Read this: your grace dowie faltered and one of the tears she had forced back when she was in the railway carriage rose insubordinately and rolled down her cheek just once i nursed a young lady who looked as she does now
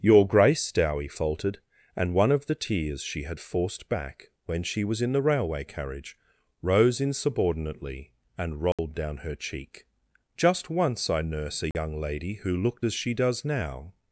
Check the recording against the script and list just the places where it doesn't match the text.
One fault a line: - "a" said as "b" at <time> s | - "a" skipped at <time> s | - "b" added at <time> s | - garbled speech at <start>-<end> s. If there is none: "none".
- "nursed" said as "nurse" at 11.2 s